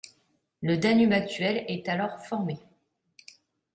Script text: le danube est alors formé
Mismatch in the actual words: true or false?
true